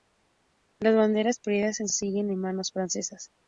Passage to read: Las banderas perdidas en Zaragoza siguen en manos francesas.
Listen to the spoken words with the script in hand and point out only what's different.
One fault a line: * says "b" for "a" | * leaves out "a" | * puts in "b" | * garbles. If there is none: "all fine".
* leaves out "Zaragoza"